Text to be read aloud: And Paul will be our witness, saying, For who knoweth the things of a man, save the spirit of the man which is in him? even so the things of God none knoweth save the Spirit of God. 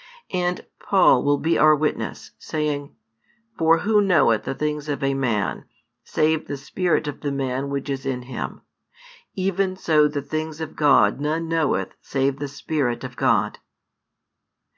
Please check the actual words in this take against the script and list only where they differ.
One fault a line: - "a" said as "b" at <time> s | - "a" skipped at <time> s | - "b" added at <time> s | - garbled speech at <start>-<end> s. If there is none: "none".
none